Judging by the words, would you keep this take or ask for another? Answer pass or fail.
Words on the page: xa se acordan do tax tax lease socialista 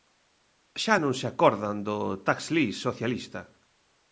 fail